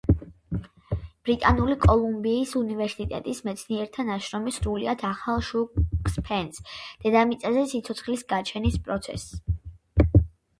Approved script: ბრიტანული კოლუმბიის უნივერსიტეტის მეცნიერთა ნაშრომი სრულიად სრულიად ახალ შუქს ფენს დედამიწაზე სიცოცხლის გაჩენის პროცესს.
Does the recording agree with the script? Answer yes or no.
no